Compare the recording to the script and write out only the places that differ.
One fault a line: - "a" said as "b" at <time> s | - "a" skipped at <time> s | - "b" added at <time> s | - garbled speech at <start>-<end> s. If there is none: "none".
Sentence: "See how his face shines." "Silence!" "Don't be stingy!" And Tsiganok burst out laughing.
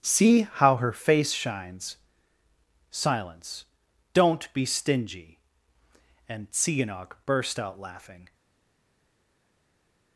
- "his" said as "her" at 0.8 s